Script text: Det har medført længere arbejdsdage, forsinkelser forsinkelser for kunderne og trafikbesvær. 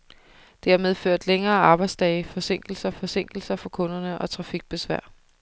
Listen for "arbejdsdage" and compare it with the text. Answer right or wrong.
right